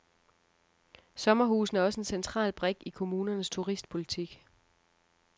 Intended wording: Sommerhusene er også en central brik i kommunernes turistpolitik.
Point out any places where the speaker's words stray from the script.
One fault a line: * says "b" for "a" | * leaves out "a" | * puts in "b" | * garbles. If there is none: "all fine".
all fine